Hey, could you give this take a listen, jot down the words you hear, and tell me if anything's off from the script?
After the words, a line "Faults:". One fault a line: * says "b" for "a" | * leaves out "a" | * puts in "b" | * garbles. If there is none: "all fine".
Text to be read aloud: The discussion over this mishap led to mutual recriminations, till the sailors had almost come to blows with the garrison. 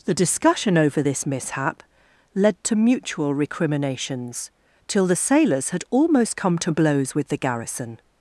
The discussion over this mishap led to mutual recriminations, till the sailors had almost come to blows with the garrison.
Faults:
all fine